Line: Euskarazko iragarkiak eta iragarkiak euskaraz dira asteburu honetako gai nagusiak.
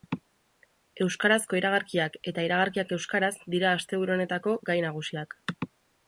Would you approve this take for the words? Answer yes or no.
yes